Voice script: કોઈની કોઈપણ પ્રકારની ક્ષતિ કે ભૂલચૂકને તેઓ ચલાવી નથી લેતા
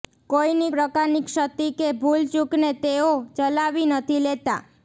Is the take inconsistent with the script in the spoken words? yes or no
yes